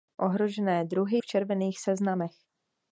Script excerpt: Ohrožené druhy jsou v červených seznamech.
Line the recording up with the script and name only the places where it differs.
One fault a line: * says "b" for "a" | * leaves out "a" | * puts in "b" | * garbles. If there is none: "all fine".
* leaves out "jsou"